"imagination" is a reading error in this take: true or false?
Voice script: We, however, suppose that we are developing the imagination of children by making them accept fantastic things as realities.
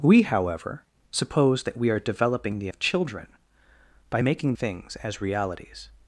true